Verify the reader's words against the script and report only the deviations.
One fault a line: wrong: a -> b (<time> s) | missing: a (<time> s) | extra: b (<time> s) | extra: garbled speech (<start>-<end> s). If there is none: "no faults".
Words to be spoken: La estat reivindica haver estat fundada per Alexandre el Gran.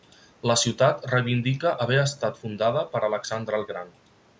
wrong: estat -> ciutat (0.6 s)